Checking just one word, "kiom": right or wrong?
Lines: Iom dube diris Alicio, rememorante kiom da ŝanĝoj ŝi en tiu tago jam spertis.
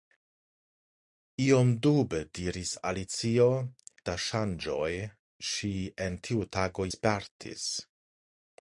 wrong